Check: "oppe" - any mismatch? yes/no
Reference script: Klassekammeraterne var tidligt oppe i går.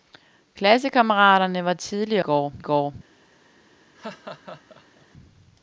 yes